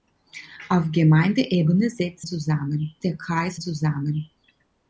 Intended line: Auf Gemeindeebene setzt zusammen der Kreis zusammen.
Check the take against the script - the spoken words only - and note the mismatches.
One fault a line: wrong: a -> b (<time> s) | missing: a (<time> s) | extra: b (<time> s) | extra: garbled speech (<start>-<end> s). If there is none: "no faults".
no faults